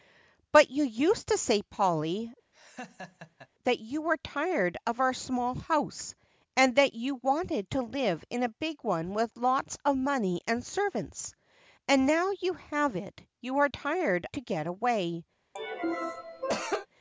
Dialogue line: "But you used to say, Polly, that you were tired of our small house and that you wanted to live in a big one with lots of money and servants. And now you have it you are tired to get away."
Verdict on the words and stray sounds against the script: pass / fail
fail